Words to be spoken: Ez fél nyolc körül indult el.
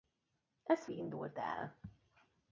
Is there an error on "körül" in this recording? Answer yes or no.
yes